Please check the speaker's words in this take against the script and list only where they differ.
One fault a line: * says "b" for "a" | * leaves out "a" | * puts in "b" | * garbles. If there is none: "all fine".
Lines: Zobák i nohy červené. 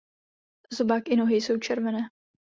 * puts in "jsou"